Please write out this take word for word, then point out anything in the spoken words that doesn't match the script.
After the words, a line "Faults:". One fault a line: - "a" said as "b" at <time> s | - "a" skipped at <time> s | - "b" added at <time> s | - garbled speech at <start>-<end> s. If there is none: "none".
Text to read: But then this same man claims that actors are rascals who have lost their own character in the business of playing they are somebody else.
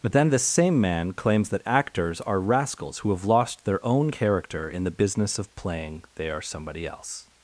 But then this same man claims that actors are rascals who have lost their own character in the business of playing they are somebody else.
Faults:
none